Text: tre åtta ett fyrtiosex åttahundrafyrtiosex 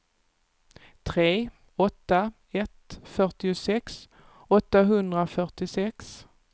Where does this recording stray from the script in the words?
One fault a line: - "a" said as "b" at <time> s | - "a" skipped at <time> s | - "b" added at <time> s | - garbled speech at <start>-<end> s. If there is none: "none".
none